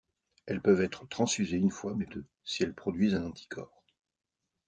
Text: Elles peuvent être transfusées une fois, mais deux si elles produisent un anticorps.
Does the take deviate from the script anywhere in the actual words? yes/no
no